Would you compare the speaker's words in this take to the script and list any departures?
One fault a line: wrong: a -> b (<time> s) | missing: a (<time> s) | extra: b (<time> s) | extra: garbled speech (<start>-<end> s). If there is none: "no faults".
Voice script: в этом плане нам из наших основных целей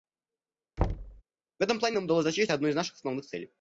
extra: удалось достичь одной (2.0 s)